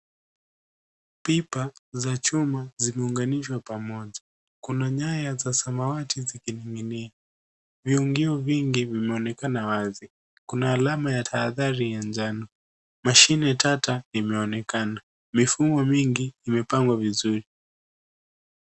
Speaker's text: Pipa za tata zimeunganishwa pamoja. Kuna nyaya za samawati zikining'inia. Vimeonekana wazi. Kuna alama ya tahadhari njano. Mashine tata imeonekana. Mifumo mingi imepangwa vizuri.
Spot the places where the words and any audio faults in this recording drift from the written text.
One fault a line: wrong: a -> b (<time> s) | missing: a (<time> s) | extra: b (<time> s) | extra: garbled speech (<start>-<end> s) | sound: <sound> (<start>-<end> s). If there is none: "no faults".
wrong: tata -> chuma (2.2 s)
extra: Viungio vingi (7.8 s)
extra: ya (11.9 s)